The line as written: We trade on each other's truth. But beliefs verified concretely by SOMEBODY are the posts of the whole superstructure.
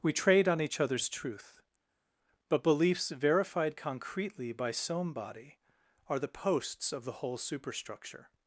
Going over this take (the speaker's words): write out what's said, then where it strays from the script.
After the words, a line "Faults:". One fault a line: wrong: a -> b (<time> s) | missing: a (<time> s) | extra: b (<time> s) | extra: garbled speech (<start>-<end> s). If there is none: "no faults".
We trade on each other's truth. But beliefs verified concretely by SOMEBODY are the posts of the whole superstructure.
Faults:
no faults